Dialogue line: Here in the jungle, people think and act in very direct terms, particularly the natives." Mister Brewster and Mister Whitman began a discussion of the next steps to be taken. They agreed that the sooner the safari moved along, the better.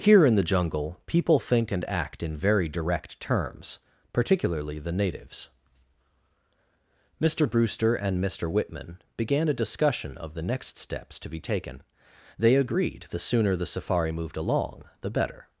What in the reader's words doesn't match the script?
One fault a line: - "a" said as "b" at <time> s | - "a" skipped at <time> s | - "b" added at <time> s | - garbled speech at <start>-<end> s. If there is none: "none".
- "that" skipped at 13.1 s